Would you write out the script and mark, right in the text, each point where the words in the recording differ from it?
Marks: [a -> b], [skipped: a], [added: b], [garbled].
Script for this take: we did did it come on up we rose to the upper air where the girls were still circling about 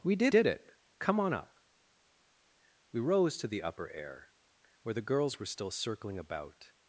we did did it come on up we rose to the upper air where the girls were still circling about